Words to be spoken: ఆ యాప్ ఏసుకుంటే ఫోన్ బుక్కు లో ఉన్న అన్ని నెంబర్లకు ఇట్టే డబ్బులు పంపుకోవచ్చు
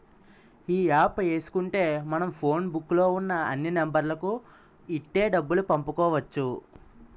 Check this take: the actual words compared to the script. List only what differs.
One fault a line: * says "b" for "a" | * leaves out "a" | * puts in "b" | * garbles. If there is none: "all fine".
* says "ఈ" for "ఆ"
* puts in "మనం"